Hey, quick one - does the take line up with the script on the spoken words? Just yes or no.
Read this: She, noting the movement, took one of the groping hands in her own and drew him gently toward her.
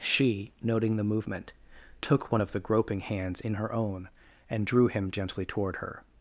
yes